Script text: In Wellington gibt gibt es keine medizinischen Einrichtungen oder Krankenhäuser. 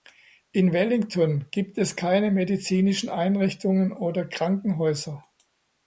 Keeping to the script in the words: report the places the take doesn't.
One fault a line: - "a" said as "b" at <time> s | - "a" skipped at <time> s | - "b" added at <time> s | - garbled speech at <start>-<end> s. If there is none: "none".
- "gibt" skipped at 1.8 s